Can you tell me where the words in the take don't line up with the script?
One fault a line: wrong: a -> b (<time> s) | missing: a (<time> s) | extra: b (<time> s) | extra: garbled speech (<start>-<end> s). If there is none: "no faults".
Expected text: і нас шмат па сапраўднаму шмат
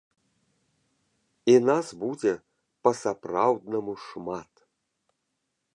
wrong: шмат -> будзе (2.0 s)